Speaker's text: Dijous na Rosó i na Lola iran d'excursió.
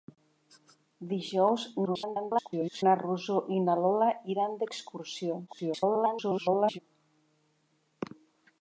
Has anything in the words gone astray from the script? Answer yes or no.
yes